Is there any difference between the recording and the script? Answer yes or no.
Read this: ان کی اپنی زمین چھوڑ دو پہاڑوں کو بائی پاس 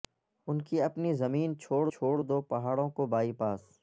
yes